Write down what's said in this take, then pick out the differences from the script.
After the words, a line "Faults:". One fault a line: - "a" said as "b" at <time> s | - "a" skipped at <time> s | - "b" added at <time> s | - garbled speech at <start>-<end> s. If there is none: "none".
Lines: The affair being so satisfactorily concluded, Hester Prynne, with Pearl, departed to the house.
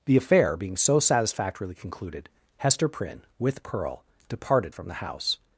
The affair being so satisfactorily concluded, Hester Prynne, with Pearl, departed from the house.
Faults:
- "to" said as "from" at 4.7 s